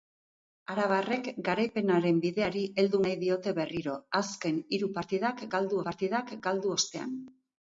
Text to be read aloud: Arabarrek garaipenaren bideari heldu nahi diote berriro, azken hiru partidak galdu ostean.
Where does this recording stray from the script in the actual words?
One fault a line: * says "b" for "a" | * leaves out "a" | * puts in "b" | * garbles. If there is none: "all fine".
* puts in "partidak galdu"